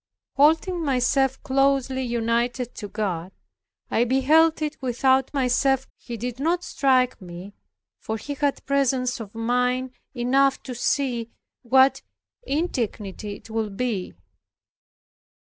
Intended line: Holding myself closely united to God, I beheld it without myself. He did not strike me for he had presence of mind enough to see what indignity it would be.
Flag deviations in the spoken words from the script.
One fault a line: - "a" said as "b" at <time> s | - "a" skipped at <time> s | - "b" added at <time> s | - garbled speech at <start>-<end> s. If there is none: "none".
none